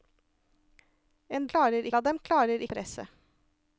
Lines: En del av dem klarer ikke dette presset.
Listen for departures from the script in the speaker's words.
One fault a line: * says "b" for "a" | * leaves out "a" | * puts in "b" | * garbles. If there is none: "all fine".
* says "klarer" for "del"
* leaves out "ikke dette"